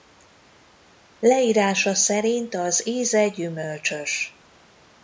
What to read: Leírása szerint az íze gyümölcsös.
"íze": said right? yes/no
yes